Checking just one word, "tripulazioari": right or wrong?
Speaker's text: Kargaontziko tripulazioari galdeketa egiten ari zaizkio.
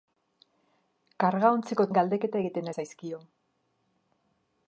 wrong